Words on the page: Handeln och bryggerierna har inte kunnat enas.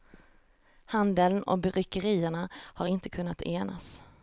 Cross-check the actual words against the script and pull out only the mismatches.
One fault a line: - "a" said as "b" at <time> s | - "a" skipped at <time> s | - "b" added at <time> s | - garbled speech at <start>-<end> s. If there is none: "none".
none